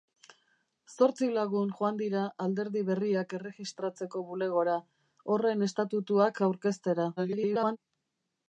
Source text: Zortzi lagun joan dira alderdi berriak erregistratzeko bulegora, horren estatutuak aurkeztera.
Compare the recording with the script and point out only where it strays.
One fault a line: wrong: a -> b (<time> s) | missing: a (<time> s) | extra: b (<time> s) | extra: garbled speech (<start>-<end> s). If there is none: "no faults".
extra: garbled speech (7.2-7.8 s)